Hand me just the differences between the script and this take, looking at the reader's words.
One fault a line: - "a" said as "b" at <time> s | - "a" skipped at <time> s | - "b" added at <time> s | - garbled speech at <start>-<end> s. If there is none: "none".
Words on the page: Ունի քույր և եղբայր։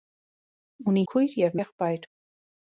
none